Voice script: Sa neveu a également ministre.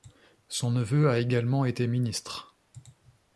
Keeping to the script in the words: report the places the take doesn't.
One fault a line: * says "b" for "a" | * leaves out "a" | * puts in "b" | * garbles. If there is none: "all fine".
* says "Son" for "Sa"
* puts in "été"